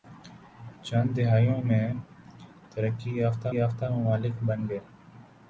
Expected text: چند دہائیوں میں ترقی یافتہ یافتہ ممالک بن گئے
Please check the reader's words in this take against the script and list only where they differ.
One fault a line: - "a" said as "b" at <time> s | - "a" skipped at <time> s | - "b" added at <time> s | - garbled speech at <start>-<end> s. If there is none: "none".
none